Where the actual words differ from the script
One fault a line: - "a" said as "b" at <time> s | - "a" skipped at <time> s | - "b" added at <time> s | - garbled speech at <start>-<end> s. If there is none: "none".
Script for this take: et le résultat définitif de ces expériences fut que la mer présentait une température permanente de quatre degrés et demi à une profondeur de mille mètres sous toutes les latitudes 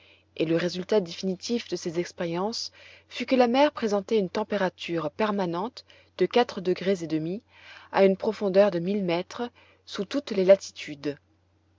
none